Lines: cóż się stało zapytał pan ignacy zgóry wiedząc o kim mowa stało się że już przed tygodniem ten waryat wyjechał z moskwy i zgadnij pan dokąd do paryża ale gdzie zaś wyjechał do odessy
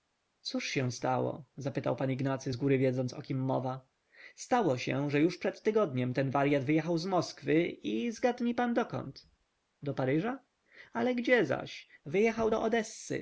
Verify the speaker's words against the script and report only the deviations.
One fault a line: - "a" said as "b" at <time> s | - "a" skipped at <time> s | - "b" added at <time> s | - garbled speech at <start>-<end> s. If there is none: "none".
none